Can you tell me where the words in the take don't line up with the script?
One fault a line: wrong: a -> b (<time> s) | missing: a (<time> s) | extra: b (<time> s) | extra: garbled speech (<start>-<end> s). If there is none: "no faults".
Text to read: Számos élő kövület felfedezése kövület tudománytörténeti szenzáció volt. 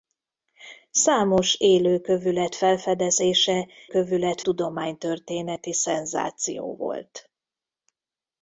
no faults